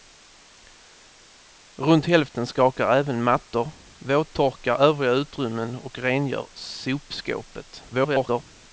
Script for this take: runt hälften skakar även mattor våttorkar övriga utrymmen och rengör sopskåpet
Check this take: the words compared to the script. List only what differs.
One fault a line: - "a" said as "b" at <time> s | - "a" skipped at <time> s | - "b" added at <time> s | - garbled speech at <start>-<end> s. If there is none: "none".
- garbled speech at 7.9-8.4 s